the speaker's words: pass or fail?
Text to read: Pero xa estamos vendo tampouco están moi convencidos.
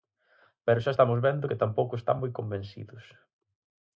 fail